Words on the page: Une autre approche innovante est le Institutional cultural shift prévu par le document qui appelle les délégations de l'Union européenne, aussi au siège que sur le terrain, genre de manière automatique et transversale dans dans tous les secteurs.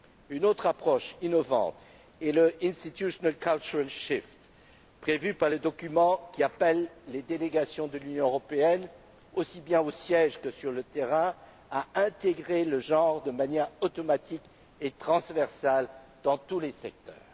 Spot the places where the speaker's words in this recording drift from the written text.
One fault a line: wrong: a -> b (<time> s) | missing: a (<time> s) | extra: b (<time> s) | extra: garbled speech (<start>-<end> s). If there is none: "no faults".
extra: bien (9.6 s)
extra: à intégrer le (11.7 s)
missing: dans (16.4 s)